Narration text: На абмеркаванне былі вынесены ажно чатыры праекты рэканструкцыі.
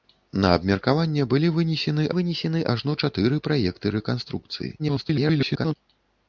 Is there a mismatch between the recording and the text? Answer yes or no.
yes